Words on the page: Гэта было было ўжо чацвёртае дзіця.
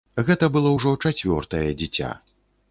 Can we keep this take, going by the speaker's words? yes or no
no